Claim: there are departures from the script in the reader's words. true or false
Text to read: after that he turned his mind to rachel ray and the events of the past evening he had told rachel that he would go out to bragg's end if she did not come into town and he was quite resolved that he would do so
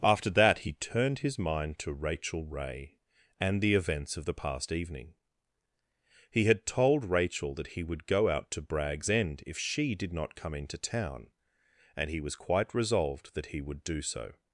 false